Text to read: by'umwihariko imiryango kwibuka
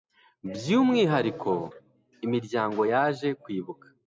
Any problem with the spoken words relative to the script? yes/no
yes